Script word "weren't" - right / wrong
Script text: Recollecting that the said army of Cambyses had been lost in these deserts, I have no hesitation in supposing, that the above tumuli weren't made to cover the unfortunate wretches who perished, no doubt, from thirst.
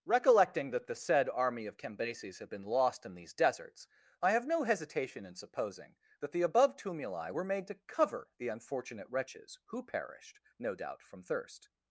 wrong